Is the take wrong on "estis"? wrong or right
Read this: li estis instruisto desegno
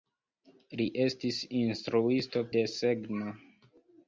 right